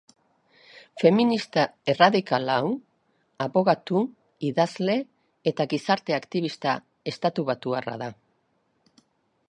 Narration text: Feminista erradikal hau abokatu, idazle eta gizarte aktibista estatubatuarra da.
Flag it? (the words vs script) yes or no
no